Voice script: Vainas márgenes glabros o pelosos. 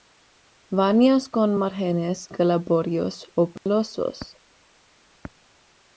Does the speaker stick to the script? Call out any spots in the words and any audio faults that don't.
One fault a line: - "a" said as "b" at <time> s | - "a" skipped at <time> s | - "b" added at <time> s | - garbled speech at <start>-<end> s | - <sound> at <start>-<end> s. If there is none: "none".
- "con" added at 1.3 s
- dropout at 3.6-3.7 s